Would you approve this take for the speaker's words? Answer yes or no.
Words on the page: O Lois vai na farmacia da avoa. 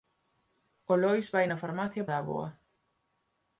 yes